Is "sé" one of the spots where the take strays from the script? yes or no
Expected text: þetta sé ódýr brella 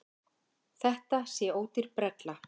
no